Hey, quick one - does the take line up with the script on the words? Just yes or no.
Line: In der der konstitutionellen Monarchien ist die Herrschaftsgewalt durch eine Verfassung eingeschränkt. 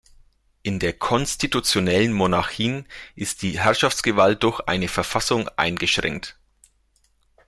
no